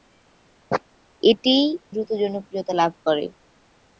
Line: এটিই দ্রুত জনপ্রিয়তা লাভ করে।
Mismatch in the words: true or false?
false